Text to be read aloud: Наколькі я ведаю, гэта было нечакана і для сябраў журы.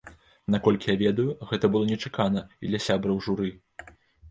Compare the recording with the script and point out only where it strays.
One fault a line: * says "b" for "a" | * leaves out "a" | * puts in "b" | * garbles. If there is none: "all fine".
all fine